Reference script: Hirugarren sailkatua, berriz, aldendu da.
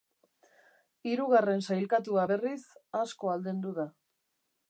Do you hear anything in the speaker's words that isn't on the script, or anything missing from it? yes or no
yes